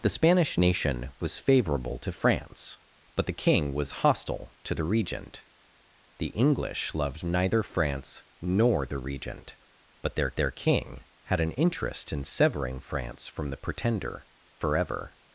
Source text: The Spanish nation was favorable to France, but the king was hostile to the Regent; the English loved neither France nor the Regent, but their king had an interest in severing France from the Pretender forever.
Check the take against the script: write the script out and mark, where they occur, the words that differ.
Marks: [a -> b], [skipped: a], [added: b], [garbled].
The Spanish nation was favorable to France, but the king was hostile to the Regent; the English loved neither France nor the Regent, but their [added: their] king had an interest in severing France from the Pretender forever.